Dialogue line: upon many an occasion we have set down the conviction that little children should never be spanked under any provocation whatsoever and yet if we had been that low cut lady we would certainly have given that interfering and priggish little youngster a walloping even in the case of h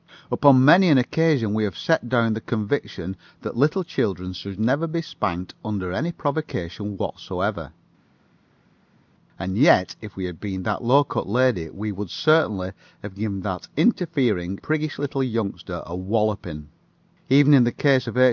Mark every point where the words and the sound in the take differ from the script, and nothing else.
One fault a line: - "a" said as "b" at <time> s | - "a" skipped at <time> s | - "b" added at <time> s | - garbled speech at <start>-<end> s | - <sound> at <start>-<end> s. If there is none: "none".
- "and" skipped at 14.6 s